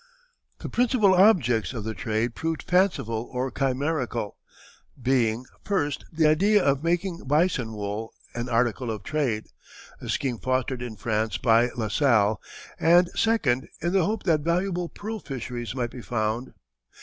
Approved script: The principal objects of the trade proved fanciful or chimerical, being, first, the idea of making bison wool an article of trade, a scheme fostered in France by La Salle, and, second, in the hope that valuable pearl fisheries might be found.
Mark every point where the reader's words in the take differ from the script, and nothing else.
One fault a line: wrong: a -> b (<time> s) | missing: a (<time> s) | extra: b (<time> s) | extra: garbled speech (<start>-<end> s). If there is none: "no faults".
no faults